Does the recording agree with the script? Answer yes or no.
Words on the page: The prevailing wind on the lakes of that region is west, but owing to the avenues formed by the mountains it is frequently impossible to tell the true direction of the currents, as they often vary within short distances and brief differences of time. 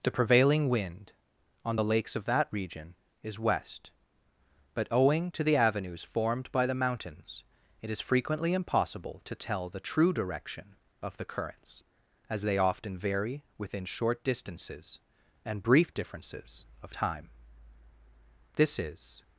no